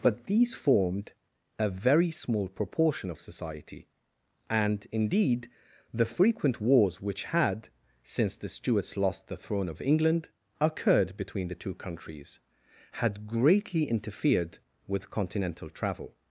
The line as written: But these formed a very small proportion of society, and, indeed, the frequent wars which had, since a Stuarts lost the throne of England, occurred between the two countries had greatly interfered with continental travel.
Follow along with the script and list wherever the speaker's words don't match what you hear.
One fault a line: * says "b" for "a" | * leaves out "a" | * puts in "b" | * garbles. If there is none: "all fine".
* says "the" for "a"